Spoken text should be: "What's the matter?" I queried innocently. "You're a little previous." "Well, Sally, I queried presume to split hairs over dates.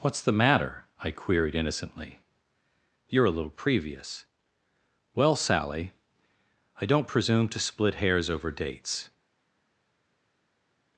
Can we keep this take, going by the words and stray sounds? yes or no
no